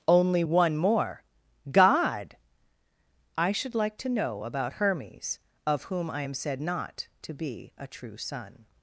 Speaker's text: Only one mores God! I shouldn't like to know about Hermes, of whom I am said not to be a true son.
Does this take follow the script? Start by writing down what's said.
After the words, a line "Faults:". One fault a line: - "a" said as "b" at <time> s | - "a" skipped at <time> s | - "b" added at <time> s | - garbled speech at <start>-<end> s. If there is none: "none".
Only one more God! I should like to know about Hermes, of whom I am said not to be a true son.
Faults:
- "mores" said as "more" at 0.8 s
- "shouldn't" said as "should" at 3.5 s